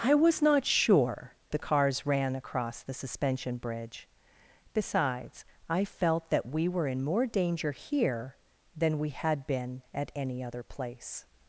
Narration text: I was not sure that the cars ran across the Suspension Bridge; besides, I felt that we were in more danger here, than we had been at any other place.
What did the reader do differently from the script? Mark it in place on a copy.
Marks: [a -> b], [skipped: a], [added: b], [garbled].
I was not sure [skipped: that] the cars ran across the Suspension Bridge; besides, I felt that we were in more danger here, than we had been at any other place.